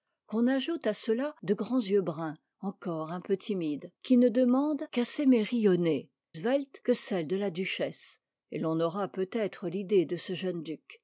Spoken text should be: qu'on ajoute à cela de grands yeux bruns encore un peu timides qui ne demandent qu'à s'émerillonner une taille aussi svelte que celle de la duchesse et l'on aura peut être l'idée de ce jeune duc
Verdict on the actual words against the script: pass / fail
fail